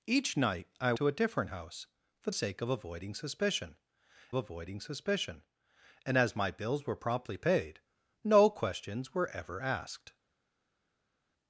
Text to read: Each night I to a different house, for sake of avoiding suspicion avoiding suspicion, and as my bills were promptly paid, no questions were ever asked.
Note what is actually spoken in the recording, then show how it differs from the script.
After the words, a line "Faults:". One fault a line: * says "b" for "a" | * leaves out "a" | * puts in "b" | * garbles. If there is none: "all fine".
Each night I to a different house, for sake of avoiding suspicion avoiding suspicion, and as my bills were promptly paid, no questions were ever asked.
Faults:
all fine